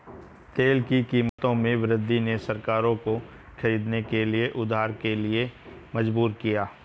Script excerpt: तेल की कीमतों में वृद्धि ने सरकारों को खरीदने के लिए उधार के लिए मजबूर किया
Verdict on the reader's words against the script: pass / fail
pass